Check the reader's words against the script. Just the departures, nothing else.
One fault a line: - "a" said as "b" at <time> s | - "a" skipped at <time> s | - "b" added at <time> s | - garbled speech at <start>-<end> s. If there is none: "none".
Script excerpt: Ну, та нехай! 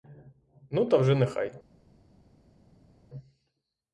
- "вже" added at 1.0 s